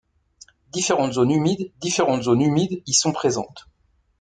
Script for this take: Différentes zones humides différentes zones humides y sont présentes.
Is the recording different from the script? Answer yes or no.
no